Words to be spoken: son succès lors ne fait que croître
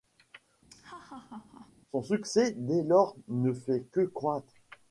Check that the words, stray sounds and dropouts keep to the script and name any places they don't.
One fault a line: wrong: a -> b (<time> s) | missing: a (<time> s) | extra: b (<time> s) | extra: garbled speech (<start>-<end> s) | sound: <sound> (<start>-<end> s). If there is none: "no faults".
sound: laugh (0.7-1.7 s)
extra: dès (2.6 s)